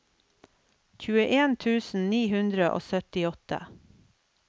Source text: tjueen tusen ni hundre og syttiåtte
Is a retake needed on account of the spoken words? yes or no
no